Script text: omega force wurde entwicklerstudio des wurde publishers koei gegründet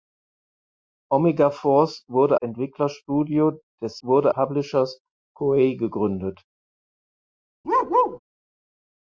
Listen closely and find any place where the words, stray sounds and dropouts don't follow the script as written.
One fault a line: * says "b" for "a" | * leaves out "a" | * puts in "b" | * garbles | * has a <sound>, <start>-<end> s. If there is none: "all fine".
* has a bark, 7.6-8.2 s